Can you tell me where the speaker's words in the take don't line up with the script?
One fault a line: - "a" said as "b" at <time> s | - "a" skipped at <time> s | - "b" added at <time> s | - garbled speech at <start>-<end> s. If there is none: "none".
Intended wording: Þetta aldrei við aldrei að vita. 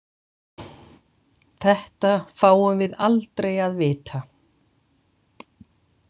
- "aldrei" said as "fáum" at 2.4 s